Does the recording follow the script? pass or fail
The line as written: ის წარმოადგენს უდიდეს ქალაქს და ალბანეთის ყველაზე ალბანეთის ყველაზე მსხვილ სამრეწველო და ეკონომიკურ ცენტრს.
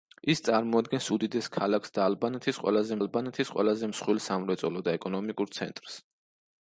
pass